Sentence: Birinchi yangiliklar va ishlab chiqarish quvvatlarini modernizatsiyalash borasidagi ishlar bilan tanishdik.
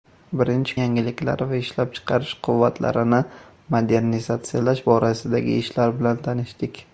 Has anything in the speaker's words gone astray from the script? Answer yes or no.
no